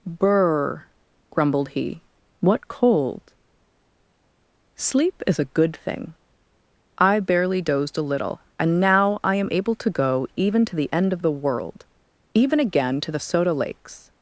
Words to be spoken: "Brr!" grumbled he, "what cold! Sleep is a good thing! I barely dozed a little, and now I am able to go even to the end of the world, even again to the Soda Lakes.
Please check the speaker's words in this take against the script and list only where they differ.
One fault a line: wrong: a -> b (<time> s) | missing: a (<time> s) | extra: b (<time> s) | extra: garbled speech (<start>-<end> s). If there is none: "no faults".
no faults